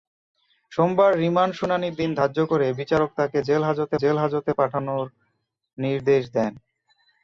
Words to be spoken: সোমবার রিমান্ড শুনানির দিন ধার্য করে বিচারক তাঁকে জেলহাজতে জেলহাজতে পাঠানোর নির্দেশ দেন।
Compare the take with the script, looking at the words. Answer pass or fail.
pass